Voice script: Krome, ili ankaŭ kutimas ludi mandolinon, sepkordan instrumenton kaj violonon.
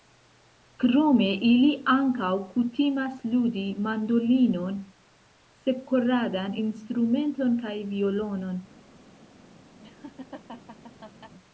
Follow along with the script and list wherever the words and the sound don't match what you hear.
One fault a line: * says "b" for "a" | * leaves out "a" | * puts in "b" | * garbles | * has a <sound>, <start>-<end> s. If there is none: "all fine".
* has a laugh, 9.8-11.3 s